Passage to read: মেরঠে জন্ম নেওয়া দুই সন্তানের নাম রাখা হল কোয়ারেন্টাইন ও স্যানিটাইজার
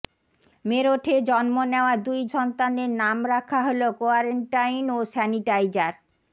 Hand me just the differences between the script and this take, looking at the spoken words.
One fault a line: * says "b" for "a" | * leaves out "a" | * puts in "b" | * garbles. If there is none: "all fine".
all fine